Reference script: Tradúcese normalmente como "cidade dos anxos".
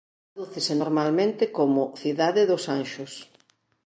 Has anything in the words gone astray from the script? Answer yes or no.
no